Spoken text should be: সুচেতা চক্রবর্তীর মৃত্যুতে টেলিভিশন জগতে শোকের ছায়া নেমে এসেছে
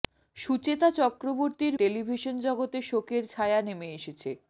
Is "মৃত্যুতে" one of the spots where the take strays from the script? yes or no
yes